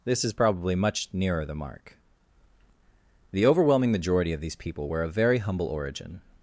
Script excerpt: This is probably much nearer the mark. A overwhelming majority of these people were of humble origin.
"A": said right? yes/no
no